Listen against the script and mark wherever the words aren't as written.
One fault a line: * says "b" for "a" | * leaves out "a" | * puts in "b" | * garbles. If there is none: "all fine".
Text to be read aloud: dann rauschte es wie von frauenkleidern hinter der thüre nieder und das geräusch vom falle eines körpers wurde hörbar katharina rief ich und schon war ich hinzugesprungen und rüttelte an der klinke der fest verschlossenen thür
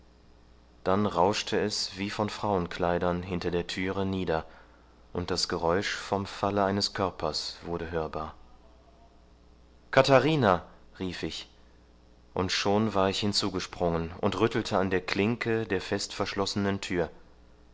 all fine